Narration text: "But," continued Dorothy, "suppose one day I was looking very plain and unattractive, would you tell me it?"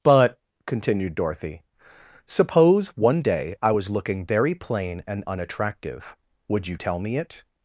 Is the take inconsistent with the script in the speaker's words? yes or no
no